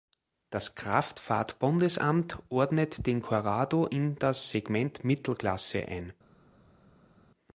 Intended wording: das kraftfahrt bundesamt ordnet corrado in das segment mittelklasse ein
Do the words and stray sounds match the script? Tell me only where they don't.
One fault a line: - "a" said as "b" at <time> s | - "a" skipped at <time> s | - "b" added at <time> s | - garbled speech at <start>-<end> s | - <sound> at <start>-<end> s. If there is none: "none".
- "den" added at 3.0 s